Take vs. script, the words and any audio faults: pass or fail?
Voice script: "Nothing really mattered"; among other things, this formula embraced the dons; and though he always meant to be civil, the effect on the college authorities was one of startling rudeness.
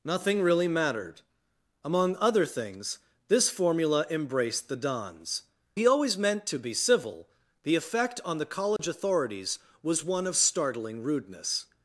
fail